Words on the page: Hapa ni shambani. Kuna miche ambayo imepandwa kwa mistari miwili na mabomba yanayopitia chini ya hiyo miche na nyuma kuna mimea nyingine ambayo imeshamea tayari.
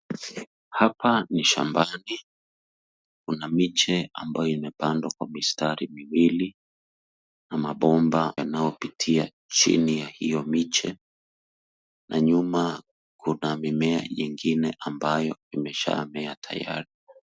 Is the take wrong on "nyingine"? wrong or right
right